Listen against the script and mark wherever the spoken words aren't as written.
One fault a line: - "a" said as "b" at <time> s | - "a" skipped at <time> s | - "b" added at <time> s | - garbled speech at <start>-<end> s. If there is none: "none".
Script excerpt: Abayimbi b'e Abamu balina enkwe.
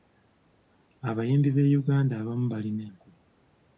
- "Uganda" added at 1.8 s